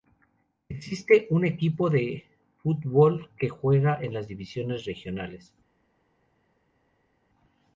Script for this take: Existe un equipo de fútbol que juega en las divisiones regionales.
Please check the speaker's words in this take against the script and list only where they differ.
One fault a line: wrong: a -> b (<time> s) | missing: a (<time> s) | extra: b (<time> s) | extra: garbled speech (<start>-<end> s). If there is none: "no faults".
no faults